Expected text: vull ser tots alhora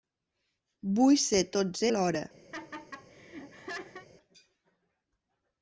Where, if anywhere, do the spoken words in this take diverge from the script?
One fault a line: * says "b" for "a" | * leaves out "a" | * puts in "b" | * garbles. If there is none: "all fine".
all fine